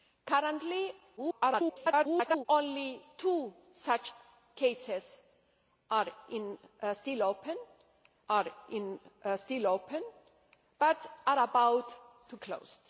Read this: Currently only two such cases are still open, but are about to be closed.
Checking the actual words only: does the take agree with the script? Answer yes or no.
no